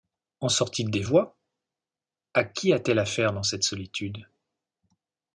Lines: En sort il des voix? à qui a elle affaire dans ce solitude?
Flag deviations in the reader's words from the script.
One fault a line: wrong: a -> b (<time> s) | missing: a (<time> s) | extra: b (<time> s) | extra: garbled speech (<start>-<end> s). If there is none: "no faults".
extra: t (2.8 s)
wrong: ce -> cette (3.4 s)